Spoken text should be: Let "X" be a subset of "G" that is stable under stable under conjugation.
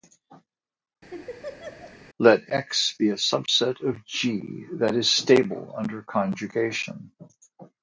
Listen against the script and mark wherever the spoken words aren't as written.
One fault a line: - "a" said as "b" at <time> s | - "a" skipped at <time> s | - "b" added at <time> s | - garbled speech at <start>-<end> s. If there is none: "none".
- "stable under" skipped at 6.0 s